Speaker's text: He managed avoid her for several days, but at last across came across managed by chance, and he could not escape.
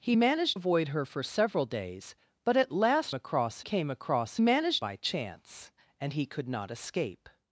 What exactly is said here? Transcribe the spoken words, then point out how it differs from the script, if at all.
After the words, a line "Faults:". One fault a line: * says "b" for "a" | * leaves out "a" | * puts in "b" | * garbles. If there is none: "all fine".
He managed avoid her for several days, but at last across came across managed by chance, and he could not escape.
Faults:
all fine